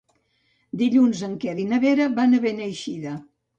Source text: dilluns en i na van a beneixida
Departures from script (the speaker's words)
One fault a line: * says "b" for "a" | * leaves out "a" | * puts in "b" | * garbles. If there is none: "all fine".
* puts in "quer"
* puts in "vera"